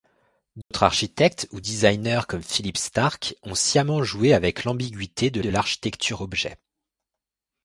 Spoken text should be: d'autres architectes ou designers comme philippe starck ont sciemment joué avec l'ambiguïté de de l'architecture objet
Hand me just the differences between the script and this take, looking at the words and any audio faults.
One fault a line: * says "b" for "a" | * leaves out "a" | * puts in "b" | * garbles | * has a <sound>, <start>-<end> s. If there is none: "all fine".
* has a dropout, 0.6-0.7 s